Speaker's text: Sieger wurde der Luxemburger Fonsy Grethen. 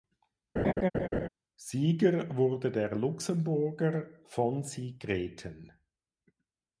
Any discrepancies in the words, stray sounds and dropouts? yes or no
yes